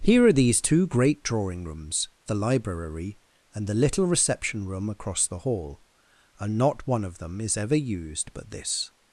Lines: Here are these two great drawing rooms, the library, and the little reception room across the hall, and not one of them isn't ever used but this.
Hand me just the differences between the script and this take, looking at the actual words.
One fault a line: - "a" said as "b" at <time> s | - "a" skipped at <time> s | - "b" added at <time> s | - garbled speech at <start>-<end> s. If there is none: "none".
- "isn't" said as "is" at 7.4 s